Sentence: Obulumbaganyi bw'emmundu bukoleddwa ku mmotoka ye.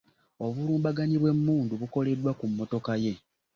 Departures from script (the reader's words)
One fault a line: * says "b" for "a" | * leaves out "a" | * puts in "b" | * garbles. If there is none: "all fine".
all fine